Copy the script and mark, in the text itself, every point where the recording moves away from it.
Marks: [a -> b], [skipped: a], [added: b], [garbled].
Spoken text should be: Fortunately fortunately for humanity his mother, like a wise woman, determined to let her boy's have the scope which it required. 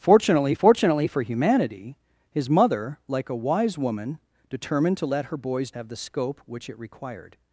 Fortunately fortunately for humanity his mother, like a wise woman, determined to let her boy's have the scope which it required.